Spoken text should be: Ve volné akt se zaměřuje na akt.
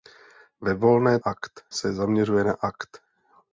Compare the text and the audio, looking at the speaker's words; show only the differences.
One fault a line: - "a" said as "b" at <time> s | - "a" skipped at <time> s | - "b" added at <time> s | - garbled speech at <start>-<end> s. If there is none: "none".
none